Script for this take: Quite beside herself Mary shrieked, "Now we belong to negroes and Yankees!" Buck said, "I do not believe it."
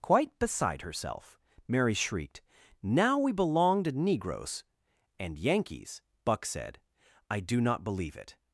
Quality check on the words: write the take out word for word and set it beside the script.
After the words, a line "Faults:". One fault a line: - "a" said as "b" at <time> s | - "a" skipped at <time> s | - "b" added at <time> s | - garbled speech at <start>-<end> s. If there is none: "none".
Quite beside herself Mary shrieked, "Now we belong to negroes and Yankees!" Buck said, "I do not believe it."
Faults:
none